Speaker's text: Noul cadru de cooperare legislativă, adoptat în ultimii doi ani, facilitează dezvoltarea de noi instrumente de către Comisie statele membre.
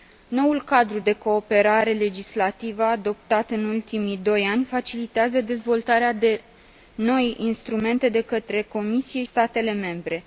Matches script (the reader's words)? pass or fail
pass